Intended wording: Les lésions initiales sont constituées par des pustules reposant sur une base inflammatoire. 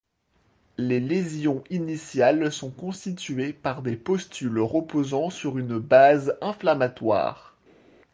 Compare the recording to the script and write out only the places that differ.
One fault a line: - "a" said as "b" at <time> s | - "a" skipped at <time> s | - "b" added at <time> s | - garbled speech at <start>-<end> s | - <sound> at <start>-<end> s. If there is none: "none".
none